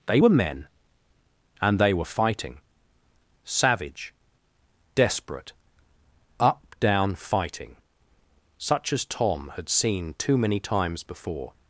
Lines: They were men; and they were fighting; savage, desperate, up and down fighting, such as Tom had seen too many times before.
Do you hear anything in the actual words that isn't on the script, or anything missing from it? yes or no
yes